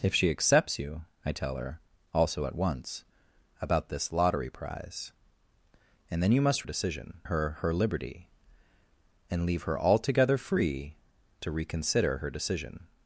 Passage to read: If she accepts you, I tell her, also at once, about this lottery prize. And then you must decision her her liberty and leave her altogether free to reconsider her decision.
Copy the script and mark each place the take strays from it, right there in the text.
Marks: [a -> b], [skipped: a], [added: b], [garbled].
If she accepts you, I tell her, also at once, about this lottery prize. And then you must decision her her liberty and leave her altogether free to reconsider her decision.